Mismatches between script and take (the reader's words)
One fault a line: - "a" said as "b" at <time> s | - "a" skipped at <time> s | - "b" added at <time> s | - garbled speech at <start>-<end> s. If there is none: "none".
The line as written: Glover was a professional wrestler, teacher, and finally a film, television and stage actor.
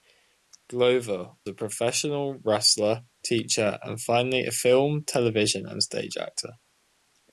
- "was" skipped at 1.3 s